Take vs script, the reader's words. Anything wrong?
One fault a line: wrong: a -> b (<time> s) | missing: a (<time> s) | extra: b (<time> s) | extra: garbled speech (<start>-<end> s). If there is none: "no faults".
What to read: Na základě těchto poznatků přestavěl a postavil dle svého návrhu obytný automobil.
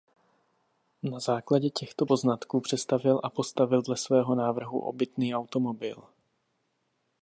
no faults